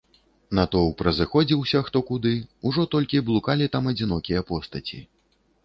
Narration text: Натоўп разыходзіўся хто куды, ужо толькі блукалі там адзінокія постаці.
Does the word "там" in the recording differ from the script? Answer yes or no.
no